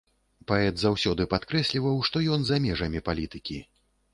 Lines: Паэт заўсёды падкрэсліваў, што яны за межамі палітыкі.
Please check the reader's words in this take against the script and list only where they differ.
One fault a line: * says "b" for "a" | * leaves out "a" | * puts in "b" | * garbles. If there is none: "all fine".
* says "ён" for "яны"